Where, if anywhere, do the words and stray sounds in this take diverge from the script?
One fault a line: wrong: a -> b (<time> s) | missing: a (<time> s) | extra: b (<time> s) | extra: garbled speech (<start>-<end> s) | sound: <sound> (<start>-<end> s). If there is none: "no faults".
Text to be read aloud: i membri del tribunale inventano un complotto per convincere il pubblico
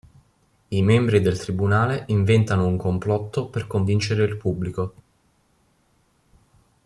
no faults